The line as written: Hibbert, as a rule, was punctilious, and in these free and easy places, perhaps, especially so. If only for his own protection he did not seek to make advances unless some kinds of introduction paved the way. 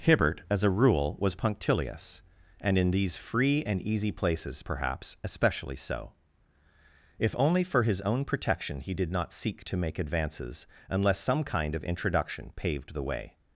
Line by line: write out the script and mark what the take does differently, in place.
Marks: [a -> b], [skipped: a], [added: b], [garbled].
Hibbert, as a rule, was punctilious, and in these free and easy places, perhaps, especially so. If only for his own protection he did not seek to make advances unless some [kinds -> kind] of introduction paved the way.